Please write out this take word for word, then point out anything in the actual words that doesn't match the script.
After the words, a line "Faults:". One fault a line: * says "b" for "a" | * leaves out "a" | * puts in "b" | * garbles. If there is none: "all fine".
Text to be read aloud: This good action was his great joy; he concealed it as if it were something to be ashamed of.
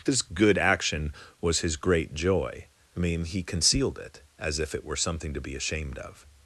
This good action was his great joy; I mean he concealed it as if it were something to be ashamed of.
Faults:
* puts in "I mean"